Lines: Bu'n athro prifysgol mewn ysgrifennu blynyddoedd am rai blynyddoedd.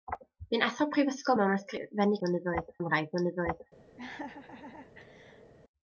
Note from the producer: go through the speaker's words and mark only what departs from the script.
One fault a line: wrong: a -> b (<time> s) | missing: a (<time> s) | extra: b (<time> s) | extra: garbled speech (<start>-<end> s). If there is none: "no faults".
no faults